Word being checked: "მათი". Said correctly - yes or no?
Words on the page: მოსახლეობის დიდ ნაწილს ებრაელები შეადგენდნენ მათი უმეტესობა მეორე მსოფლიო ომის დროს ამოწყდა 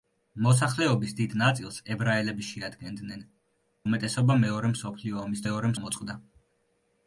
no